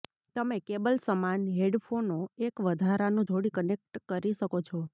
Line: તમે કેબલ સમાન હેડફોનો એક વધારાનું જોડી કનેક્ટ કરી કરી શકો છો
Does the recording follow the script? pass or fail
fail